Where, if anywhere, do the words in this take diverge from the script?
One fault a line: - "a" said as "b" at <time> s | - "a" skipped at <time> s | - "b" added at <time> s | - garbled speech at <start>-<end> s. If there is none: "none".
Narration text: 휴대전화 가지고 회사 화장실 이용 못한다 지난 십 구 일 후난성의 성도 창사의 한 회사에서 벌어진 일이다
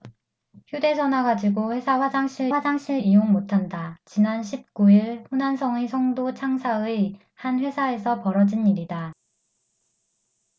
- "화장실" added at 2.5 s